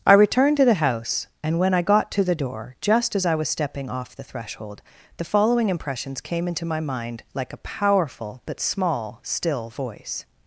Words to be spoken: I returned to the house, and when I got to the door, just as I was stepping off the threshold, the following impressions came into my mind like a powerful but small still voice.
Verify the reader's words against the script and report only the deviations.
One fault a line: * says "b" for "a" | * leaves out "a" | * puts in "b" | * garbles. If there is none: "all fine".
all fine